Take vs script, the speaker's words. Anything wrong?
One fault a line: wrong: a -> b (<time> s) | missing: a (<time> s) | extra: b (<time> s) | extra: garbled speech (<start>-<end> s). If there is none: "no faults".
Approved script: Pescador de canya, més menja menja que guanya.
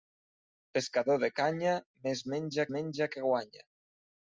no faults